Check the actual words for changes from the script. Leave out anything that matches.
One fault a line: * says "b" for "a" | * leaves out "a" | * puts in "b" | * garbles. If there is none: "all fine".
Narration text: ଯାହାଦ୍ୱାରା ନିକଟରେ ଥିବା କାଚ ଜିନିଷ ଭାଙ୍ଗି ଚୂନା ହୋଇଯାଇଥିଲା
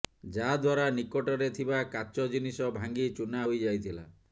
all fine